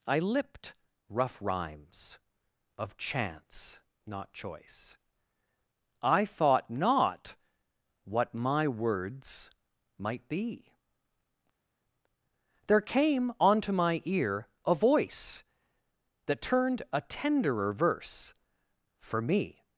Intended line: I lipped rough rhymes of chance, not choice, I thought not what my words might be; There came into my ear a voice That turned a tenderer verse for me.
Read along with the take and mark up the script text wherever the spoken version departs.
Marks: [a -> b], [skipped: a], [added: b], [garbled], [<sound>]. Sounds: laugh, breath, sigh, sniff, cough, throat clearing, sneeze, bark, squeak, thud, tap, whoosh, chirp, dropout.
I lipped rough rhymes of chance, not choice, I thought not what my words might be; There came [into -> onto] my ear a voice That turned a tenderer verse for me.